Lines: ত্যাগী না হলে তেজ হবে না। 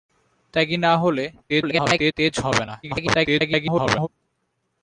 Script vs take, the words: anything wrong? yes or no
yes